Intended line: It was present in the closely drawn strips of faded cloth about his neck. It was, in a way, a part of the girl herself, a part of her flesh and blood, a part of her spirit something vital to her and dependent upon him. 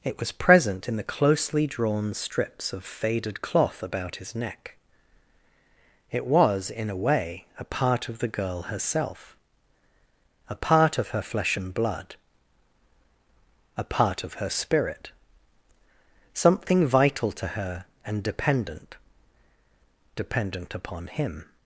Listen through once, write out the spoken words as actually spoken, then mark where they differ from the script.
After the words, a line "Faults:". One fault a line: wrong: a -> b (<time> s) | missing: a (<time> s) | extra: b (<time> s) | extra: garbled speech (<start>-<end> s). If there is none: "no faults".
It was present in the closely drawn strips of faded cloth about his neck. It was, in a way, a part of the girl herself, a part of her flesh and blood, a part of her spirit something vital to her and dependent dependent upon him.
Faults:
extra: dependent (20.1 s)